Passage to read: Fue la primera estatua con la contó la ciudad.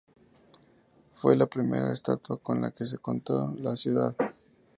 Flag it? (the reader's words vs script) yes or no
yes